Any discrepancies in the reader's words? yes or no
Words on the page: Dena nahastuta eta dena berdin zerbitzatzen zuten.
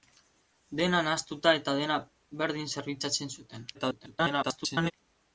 yes